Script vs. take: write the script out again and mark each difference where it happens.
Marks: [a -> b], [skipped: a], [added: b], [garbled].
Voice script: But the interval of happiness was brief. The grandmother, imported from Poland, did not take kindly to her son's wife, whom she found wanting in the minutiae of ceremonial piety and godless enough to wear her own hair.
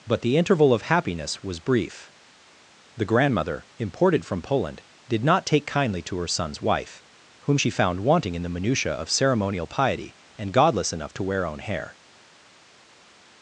But the interval of happiness was brief. The grandmother, imported from Poland, did not take kindly to her son's wife, whom she found wanting in the minutiae of ceremonial piety and godless enough to wear [skipped: her] own hair.